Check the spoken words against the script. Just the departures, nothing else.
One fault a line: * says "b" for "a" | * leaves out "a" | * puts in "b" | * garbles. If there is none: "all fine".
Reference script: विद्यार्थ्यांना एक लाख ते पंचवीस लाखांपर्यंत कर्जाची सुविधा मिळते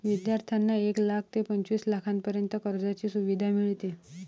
all fine